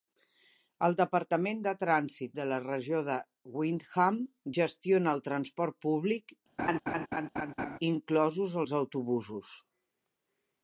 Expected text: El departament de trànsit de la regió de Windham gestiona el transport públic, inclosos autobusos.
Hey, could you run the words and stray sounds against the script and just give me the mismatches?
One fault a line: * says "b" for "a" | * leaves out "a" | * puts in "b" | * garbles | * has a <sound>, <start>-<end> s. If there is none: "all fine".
* has a laugh, 6.6-7.8 s
* puts in "els"